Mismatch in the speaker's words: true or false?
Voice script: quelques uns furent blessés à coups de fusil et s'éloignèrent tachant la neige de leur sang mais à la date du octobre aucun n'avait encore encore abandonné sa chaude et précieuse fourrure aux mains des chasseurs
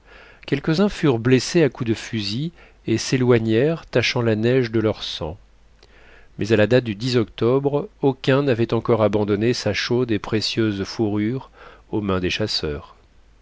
true